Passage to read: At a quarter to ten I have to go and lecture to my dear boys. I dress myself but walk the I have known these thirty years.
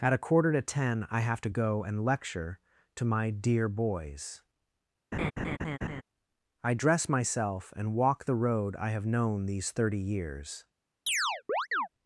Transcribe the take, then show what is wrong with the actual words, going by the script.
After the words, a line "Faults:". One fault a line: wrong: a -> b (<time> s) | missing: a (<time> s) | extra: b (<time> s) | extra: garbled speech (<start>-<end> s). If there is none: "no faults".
At a quarter to ten I have to go and lecture to my dear boys. I dress myself and walk the road I have known these thirty years.
Faults:
wrong: but -> and (7.8 s)
extra: road (8.3 s)